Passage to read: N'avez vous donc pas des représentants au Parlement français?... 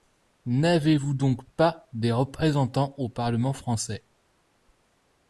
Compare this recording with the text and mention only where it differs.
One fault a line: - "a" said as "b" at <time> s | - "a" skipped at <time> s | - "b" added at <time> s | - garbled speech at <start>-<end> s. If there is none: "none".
none